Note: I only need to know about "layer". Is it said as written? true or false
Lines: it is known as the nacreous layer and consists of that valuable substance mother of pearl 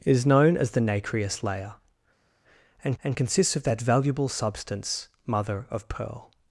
true